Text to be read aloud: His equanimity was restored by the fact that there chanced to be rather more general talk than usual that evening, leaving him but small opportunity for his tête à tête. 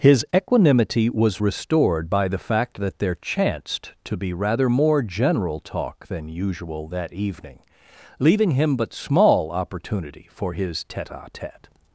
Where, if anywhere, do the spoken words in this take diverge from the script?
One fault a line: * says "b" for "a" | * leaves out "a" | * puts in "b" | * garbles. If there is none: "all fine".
all fine